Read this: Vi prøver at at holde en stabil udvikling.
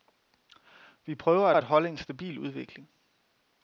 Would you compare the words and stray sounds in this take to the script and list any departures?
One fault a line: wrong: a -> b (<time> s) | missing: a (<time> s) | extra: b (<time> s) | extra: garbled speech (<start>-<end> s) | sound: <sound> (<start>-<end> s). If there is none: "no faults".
no faults